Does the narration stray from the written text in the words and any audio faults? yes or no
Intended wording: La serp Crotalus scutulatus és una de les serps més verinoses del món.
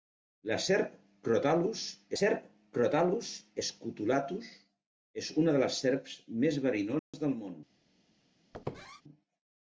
yes